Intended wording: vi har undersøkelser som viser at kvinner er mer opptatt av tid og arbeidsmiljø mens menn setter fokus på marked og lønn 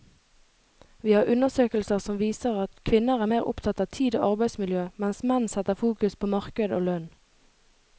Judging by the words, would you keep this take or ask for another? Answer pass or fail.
pass